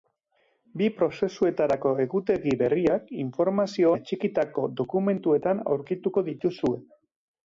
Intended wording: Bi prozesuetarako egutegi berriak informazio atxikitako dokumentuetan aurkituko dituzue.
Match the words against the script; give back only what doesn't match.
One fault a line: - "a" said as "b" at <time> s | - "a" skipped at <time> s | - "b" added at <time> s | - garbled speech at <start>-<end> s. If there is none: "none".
none